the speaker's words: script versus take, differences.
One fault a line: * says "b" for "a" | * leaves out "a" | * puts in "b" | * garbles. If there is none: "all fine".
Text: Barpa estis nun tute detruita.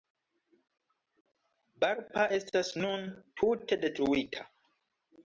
* says "estas" for "estis"